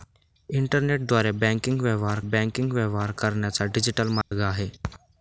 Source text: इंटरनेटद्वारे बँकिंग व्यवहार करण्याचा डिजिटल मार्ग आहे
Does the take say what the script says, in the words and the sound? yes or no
no